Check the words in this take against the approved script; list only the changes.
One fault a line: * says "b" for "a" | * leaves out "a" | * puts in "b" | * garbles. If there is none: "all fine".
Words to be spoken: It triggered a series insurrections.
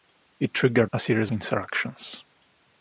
all fine